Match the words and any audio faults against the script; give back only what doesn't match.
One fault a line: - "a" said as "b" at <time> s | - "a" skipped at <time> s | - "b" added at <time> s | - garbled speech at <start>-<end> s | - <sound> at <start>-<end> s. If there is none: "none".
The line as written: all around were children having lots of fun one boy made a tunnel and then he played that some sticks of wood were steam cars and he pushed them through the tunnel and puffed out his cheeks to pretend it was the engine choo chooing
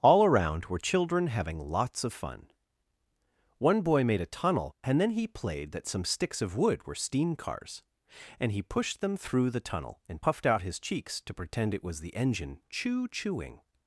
none